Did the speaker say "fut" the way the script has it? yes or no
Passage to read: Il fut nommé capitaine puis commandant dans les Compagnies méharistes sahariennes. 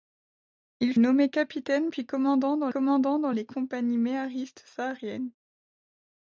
no